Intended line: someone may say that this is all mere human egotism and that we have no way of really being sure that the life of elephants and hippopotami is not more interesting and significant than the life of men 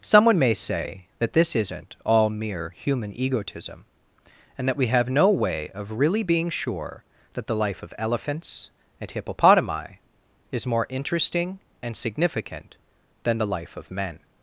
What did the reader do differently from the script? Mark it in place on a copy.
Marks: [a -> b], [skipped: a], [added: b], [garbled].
someone may say that this [is -> isn't] all mere human egotism and that we have no way of really being sure that the life of elephants and hippopotami is [skipped: not] more interesting and significant than the life of men